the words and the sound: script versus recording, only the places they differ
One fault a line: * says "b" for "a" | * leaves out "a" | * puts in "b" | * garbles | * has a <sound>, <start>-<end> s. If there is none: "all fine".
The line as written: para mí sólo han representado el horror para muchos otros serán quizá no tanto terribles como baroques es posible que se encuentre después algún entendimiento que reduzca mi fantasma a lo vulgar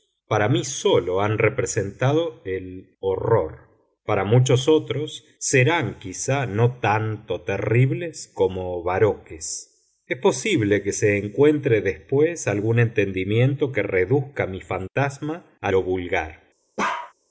* has a bark, 16.8-17.1 s